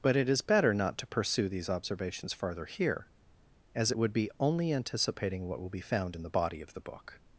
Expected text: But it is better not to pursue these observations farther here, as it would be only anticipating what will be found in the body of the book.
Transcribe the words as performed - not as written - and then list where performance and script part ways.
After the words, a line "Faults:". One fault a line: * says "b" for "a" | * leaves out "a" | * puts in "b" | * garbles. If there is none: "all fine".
But it is better not to pursue these observations farther here, as it would be only anticipating what will be found in the body of the book.
Faults:
all fine